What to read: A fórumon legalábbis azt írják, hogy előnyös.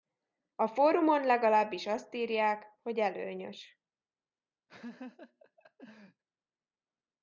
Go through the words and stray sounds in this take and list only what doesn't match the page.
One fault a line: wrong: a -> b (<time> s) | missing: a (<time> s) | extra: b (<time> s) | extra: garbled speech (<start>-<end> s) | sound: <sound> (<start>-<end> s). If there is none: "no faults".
sound: laugh (4.7-6.2 s)